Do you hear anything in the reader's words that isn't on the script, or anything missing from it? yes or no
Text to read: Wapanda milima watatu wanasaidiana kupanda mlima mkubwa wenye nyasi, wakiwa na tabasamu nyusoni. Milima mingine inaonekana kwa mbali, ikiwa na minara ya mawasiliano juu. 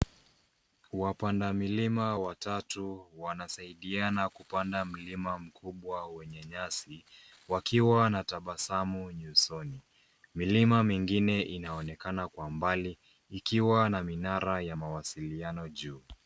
no